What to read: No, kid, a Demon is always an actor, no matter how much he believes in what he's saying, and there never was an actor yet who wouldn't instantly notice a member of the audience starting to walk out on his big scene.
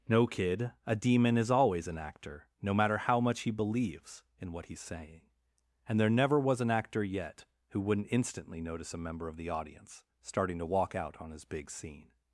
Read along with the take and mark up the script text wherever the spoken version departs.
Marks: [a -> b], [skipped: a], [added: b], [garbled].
No, kid, a Demon is always an actor, no matter how much he believes in what he's saying, and there never was an actor yet who wouldn't instantly notice a member of the audience starting to walk out on his big scene.